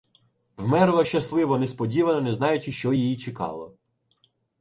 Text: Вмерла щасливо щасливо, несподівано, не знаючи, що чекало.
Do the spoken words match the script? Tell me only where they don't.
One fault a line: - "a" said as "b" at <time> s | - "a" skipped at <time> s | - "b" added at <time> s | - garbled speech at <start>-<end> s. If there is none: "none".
- "щасливо" skipped at 1.6 s
- "її" added at 2.9 s